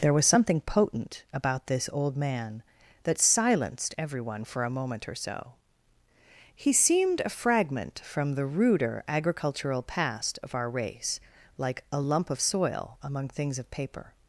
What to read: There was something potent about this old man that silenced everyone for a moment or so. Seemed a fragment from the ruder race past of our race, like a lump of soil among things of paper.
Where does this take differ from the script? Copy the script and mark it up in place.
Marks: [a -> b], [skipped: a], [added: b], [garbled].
There was something potent about this old man that silenced everyone for a moment or so. [added: He] Seemed a fragment from the ruder [race -> agricultural] past of our race, like a lump of soil among things of paper.